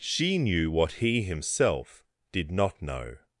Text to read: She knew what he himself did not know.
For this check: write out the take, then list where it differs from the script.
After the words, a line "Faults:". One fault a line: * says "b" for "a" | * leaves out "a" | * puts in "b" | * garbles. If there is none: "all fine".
She knew what he himself did not know.
Faults:
all fine